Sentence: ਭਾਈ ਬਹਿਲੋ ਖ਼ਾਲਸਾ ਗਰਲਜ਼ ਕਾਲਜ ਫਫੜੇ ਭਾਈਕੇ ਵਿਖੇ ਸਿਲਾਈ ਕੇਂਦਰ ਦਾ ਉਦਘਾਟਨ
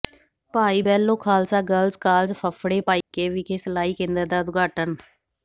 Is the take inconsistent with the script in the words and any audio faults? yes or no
yes